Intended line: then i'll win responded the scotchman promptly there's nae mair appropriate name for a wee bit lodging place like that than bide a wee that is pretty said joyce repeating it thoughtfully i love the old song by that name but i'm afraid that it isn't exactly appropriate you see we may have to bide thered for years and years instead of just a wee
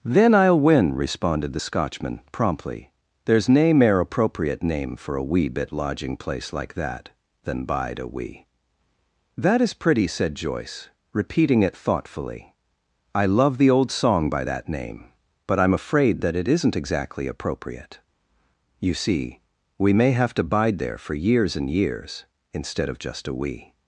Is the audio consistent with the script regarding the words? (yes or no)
no